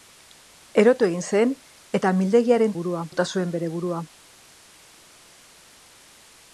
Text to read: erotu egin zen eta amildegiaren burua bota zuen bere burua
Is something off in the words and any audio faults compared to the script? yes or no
no